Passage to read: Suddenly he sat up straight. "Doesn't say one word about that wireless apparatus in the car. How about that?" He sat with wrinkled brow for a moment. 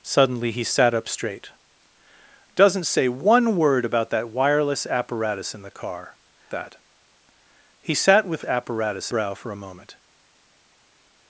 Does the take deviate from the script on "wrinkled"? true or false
true